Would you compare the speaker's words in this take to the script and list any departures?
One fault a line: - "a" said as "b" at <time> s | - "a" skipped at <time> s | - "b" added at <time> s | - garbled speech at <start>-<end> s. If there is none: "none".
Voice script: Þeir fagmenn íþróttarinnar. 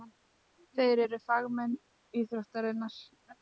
- "eru" added at 1.0 s